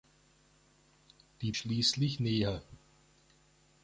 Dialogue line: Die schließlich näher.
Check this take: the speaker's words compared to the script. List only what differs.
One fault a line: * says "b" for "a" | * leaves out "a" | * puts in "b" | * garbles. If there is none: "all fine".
all fine